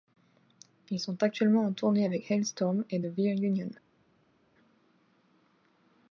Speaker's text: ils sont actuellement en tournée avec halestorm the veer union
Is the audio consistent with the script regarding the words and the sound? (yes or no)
no